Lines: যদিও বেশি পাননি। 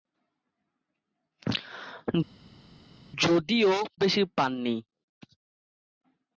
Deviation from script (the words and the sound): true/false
false